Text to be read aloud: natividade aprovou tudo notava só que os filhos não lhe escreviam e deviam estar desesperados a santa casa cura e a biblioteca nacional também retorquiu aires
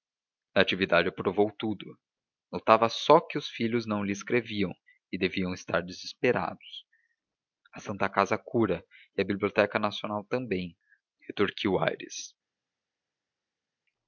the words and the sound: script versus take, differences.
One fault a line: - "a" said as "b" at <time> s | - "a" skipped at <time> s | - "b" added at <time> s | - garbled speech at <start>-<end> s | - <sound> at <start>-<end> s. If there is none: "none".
none